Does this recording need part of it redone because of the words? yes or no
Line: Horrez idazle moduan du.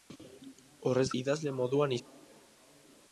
no